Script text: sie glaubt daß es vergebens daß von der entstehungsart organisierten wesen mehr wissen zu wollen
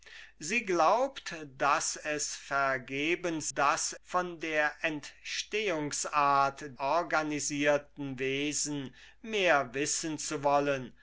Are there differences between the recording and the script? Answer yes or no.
no